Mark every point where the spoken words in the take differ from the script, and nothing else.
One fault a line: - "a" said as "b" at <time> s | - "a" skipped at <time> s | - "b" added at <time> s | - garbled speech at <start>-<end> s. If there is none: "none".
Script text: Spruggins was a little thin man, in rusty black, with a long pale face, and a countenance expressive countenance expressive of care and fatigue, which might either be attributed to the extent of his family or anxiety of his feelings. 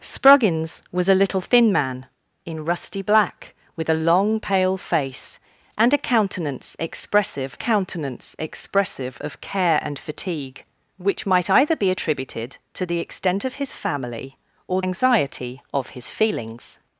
none